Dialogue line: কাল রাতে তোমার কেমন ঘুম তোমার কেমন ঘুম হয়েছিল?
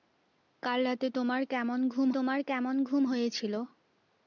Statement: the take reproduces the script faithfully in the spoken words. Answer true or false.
true